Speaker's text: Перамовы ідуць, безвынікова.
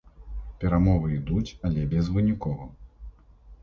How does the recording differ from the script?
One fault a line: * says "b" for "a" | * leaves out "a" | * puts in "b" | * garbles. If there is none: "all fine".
* puts in "але"